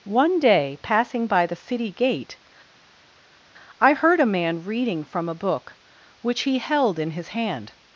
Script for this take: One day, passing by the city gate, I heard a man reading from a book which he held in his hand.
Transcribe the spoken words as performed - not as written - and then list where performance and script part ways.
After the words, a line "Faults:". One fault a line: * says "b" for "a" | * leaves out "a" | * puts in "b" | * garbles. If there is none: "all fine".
One day, passing by the city gate, I heard a man reading from a book which he held in his hand.
Faults:
all fine